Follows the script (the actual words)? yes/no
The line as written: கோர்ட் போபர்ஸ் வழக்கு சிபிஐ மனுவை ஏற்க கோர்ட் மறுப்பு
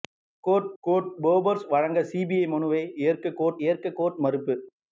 no